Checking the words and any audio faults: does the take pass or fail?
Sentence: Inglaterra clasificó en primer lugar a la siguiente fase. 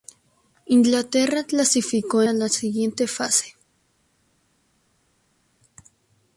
fail